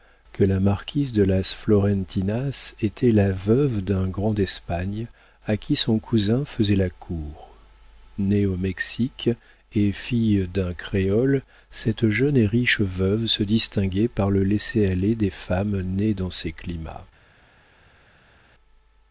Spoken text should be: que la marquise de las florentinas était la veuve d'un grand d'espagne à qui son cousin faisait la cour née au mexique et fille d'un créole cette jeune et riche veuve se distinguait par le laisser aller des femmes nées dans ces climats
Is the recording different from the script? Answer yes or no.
no